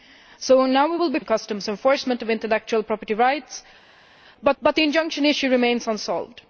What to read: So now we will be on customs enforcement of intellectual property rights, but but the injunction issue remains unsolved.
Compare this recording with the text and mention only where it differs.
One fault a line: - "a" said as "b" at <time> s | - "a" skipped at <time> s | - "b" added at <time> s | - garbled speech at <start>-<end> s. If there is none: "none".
none